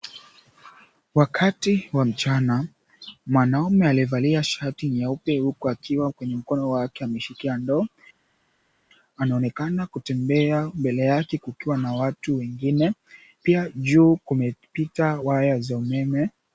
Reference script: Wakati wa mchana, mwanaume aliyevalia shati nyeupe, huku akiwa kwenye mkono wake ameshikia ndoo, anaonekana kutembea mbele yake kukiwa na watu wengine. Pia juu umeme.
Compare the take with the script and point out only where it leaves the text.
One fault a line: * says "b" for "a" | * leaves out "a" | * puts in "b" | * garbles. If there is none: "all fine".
* puts in "kumepita waya za"